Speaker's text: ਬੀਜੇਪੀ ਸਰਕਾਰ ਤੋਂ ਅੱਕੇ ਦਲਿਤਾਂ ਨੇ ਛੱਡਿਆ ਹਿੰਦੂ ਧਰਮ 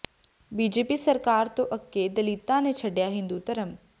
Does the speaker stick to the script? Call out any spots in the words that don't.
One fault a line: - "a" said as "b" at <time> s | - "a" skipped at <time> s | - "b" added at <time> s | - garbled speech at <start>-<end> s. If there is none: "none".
none